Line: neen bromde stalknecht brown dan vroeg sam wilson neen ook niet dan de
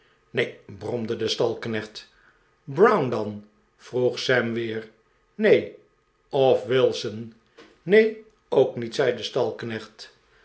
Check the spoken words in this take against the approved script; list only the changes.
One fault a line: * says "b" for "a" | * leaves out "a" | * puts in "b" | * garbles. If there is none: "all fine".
* puts in "de"
* puts in "weer neen of"
* says "zei" for "dan"